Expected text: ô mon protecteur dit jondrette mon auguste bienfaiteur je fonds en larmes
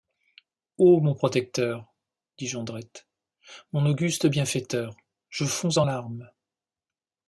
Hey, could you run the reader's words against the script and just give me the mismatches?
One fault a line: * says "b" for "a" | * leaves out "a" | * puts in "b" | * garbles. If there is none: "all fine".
all fine